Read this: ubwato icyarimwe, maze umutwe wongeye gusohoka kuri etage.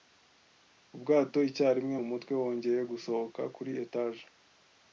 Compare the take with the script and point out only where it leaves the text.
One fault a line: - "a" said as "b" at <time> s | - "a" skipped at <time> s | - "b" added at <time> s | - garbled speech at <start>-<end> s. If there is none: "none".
- "maze" skipped at 1.9 s